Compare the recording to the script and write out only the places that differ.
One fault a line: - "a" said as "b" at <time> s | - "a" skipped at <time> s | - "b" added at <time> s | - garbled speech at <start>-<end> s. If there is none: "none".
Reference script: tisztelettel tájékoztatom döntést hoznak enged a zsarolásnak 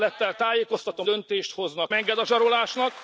none